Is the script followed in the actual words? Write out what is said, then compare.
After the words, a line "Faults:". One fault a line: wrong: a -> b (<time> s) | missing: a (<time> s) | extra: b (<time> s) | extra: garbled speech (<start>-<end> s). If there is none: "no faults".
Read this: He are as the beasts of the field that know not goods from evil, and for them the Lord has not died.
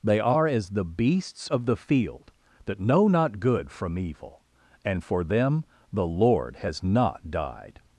They are as the beasts of the field that know not good from evil, and for them the Lord has not died.
Faults:
wrong: He -> They (0.0 s)
wrong: goods -> good (3.4 s)